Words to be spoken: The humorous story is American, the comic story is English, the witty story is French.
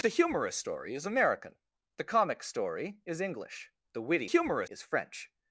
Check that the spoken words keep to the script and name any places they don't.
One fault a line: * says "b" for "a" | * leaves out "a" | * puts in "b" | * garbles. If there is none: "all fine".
* says "humorous" for "story"